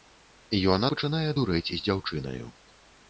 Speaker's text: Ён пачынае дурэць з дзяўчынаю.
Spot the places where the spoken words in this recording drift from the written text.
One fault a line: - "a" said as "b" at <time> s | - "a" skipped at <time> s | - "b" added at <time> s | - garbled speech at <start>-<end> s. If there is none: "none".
none